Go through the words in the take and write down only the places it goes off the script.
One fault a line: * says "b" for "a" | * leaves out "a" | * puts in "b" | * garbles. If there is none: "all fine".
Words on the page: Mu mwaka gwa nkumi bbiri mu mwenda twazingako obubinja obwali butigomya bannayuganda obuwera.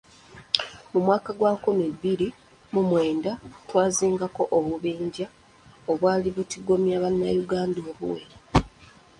all fine